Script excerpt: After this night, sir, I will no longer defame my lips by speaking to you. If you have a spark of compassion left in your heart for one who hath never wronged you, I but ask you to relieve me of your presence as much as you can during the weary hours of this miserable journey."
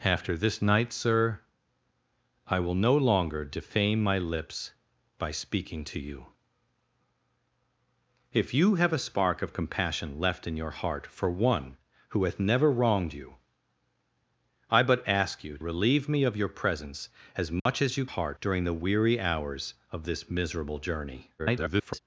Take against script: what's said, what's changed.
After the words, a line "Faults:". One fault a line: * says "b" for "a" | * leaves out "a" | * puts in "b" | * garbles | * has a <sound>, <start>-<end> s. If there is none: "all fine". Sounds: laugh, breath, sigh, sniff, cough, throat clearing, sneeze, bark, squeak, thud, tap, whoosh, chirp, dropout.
After this night, sir, I will no longer defame my lips by speaking to you. If you have a spark of compassion left in your heart for one who hath never wronged you, I but ask you relieve me of your presence as much as you heart during the weary hours of this miserable journey." [garbled]
Faults:
* leaves out "to"
* has a dropout, 17.6-17.7 s
* says "heart" for "can"
* garbles